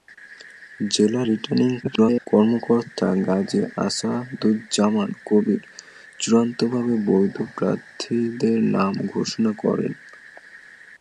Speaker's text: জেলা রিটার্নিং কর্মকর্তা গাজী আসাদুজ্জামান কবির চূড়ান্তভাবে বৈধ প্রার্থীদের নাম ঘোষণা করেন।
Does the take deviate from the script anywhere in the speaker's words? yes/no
yes